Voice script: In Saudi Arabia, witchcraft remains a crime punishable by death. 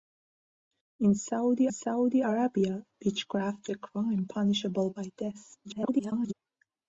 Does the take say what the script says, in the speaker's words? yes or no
no